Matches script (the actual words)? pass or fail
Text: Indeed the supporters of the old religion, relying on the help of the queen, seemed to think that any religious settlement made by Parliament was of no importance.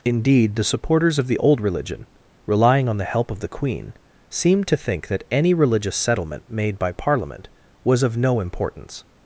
pass